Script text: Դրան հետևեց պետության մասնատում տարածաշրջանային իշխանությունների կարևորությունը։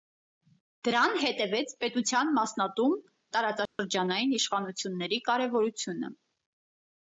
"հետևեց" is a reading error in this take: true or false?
false